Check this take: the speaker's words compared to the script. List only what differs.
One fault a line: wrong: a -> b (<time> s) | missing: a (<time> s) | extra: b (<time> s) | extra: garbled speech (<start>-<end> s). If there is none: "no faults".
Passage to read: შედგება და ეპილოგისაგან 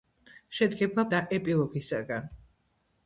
no faults